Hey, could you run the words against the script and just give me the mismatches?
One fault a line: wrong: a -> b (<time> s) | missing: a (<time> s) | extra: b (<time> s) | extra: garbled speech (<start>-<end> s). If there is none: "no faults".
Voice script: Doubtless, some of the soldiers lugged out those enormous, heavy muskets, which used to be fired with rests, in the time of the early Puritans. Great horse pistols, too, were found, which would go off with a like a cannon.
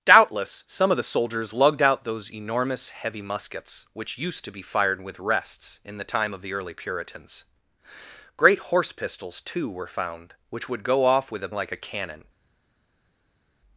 no faults